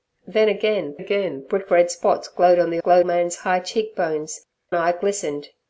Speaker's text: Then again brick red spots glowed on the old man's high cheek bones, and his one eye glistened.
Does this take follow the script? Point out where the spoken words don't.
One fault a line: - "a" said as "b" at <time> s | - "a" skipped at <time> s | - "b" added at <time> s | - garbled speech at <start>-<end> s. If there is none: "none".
- "again" added at 0.9 s
- "old" said as "glowed" at 2.7 s
- "and his one" skipped at 4.5 s